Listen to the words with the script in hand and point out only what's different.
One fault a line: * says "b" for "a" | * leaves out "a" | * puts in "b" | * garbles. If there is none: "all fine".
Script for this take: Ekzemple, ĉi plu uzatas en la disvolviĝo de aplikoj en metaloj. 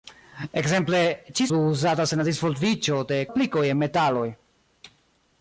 all fine